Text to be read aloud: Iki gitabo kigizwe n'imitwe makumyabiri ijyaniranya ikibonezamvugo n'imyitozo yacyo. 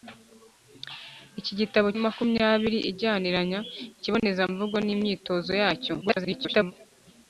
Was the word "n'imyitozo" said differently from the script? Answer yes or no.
no